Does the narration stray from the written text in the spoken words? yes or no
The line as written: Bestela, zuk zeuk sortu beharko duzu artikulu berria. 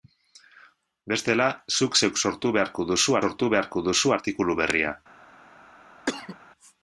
yes